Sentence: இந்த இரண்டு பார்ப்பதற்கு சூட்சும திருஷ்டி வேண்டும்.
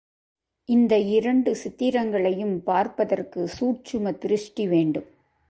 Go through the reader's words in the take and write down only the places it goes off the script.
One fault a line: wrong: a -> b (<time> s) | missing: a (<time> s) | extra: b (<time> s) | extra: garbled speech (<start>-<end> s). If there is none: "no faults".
extra: சித்திரங்களையும் (1.6 s)